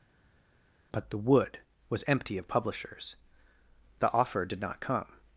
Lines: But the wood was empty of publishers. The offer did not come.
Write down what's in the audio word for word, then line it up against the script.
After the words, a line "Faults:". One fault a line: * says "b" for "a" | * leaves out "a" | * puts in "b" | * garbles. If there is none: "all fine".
But the wood was empty of publishers. The offer did not come.
Faults:
all fine